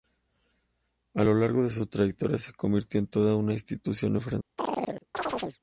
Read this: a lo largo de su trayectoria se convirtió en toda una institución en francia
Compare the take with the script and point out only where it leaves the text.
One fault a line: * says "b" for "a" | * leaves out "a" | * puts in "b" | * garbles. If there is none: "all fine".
all fine